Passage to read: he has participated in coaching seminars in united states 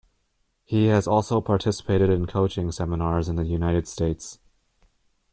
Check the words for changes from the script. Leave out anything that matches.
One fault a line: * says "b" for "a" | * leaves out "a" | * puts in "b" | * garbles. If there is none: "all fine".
* puts in "also"
* puts in "the"